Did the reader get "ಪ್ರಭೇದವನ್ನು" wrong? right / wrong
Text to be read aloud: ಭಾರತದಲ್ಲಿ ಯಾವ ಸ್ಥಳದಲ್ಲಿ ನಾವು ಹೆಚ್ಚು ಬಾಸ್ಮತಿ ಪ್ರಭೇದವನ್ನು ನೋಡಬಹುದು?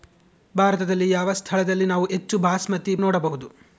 wrong